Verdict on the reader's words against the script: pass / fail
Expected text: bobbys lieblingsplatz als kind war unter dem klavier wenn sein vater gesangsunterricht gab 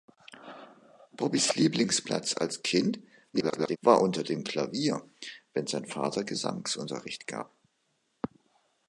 fail